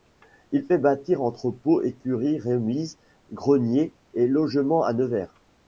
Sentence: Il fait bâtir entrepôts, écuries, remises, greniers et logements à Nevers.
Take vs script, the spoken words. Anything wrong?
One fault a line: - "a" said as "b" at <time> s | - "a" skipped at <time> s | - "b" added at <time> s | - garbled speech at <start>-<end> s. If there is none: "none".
none